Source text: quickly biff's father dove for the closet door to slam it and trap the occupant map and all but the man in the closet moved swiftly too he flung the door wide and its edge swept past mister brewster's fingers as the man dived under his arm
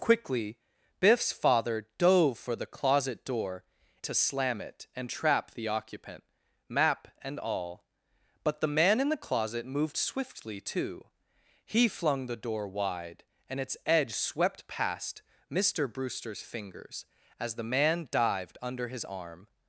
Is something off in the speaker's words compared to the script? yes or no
no